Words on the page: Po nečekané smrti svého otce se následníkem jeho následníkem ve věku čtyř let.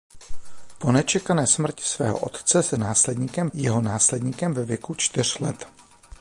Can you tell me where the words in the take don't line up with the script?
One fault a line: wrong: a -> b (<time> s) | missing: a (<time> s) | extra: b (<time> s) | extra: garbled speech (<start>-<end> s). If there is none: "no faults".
no faults